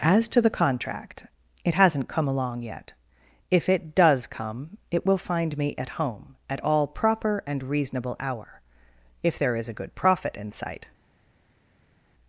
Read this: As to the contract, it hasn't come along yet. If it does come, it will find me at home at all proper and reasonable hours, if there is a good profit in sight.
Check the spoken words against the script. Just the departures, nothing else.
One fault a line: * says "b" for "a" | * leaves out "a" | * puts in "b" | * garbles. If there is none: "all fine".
* says "hour" for "hours"